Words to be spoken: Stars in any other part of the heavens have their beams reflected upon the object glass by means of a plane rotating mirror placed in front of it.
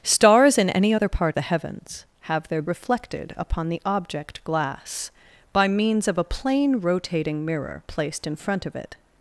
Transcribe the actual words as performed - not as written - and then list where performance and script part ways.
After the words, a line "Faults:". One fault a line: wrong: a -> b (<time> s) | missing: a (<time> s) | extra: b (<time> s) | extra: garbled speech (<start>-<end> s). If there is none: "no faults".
Stars in any other part the heavens have their reflected upon the object glass by means of a plane rotating mirror placed in front of it.
Faults:
missing: of (1.4 s)
missing: beams (2.6 s)